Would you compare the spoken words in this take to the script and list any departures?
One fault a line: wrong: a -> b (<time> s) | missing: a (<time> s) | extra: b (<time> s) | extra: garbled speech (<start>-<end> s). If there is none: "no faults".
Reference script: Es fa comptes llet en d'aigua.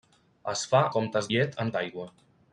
no faults